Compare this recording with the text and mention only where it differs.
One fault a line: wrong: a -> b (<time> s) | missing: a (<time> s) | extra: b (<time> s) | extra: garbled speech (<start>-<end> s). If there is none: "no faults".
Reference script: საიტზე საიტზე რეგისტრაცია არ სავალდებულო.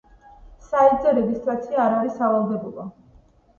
missing: საიტზე (1.1 s)
extra: არის (2.0 s)